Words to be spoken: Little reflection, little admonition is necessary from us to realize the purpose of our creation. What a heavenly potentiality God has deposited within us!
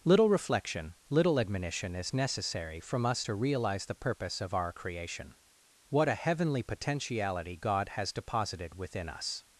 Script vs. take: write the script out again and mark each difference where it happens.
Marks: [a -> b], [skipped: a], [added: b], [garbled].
Little reflection, little admonition is necessary from us to realize the purpose of our creation. What a heavenly potentiality God has deposited within us!